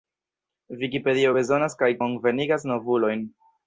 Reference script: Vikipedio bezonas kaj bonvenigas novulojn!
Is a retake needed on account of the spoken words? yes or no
no